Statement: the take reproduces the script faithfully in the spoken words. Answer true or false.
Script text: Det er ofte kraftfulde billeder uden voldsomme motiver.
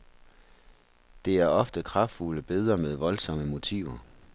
false